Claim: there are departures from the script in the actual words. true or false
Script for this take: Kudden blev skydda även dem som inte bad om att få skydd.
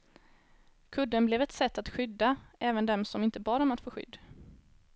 true